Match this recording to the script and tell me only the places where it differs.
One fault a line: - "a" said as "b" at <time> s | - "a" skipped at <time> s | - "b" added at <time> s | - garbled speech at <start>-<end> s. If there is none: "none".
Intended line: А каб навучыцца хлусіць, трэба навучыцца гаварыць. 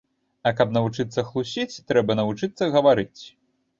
none